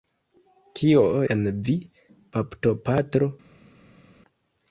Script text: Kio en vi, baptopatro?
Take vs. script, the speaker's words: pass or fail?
pass